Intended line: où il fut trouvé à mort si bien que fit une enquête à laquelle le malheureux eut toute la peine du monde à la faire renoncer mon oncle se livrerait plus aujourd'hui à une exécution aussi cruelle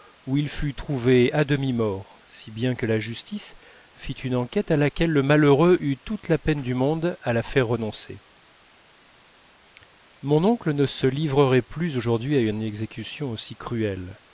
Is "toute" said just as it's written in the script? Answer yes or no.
yes